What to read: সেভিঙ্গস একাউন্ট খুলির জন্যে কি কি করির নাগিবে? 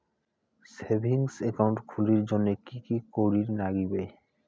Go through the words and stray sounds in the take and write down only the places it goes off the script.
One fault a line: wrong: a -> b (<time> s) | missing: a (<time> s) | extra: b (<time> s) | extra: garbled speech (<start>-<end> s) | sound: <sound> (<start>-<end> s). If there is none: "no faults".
no faults